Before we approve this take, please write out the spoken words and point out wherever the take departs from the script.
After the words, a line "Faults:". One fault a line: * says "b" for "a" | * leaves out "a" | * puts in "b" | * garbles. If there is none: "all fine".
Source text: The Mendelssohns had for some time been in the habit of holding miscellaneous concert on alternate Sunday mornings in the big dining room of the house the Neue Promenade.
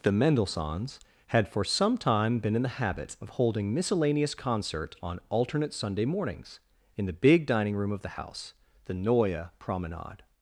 The Mendelssohns had for some time been in the habit of holding miscellaneous concert on alternate Sunday mornings in the big dining room of the house the Neue Promenade.
Faults:
all fine